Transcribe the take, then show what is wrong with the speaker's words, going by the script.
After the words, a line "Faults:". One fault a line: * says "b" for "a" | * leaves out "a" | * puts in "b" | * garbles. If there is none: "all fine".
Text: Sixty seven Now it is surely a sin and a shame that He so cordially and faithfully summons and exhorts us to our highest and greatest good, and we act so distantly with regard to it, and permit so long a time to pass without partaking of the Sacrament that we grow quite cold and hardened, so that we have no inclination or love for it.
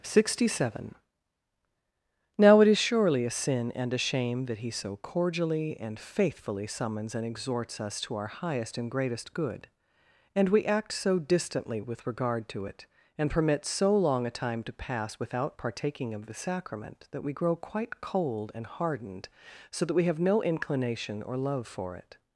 Sixty seven Now it is surely a sin and a shame that He so cordially and faithfully summons and exhorts us to our highest and greatest good, and we act so distantly with regard to it, and permit so long a time to pass without partaking of the Sacrament that we grow quite cold and hardened, so that we have no inclination or love for it.
Faults:
all fine